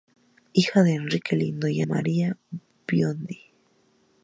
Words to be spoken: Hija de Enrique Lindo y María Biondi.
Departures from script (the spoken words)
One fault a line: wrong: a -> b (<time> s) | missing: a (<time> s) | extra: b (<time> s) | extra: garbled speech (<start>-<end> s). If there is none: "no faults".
no faults